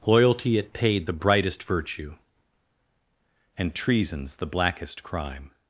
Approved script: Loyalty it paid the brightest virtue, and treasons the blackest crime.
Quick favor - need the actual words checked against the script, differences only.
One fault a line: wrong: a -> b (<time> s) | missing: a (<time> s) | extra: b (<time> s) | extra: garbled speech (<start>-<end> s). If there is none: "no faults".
no faults